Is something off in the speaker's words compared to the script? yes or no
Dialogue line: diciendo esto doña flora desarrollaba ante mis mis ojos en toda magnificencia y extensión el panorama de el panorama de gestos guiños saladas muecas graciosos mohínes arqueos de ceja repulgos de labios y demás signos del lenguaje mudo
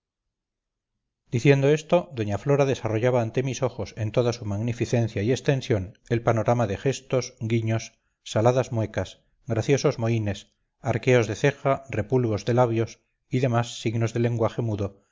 yes